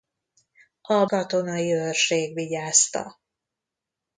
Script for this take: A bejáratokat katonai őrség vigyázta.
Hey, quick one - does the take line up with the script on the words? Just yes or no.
no